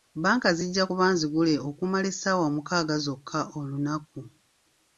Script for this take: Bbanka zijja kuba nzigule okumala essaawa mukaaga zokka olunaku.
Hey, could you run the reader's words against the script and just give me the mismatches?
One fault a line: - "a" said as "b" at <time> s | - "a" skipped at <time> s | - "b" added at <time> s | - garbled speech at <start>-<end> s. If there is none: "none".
none